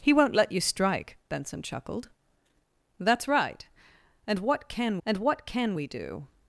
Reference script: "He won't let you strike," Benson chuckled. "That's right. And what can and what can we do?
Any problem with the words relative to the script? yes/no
no